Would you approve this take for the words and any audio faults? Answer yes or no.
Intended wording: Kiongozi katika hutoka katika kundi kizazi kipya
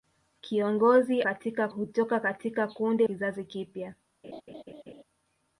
no